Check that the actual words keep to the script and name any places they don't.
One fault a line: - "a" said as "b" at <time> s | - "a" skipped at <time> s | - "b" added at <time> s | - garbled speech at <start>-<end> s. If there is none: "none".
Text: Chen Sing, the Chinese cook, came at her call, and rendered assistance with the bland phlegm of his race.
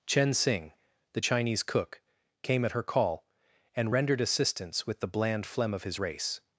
none